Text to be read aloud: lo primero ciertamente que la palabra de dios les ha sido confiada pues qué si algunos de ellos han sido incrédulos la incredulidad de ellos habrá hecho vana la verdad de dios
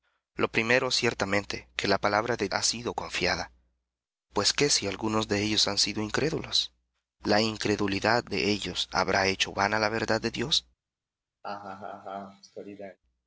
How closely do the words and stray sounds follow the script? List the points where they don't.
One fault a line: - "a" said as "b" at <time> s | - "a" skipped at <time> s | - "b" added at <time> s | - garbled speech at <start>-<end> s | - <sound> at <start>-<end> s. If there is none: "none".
- "dios les" skipped at 2.5 s
- laugh at 11.4-13.0 s